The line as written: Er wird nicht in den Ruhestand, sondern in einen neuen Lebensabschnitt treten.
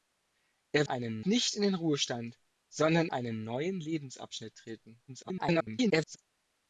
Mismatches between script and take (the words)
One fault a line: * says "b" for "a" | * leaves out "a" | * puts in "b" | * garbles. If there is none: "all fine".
* says "einen" for "wird"
* leaves out "in"
* garbles